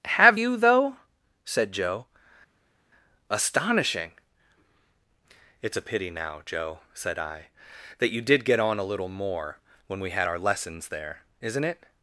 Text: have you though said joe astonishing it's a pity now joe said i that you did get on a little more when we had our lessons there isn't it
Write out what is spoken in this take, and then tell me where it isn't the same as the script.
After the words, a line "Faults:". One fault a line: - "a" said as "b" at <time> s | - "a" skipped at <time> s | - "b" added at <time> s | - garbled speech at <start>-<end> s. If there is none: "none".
have you though said joe astonishing it's a pity now joe said i that you did get on a little more when we had our lessons there isn't it
Faults:
none